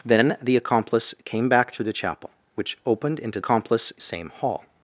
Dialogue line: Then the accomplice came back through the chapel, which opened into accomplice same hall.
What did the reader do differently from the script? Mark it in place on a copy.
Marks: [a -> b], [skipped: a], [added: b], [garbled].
Then the accomplice came back through the chapel, which opened into accomplice same hall.